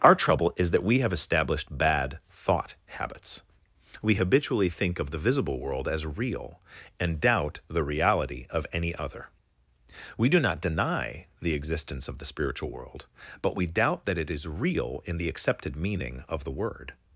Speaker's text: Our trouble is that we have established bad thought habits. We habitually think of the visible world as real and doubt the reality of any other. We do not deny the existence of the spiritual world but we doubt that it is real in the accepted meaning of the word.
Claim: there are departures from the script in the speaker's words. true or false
false